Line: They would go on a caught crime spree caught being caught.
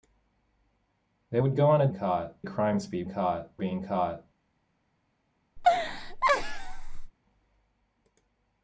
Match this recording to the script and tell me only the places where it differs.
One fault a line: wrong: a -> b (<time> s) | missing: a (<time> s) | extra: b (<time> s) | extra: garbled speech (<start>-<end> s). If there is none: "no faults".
no faults